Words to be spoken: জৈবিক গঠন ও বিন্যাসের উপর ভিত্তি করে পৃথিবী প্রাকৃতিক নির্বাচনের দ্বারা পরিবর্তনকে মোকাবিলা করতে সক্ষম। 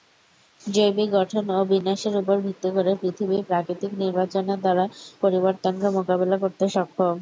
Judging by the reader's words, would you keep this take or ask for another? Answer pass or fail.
pass